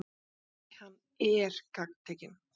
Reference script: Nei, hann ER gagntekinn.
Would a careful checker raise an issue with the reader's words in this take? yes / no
no